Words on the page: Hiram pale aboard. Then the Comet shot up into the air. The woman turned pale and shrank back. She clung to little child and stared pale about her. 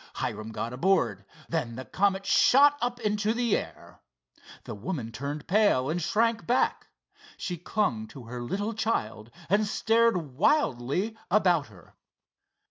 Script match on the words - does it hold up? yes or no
no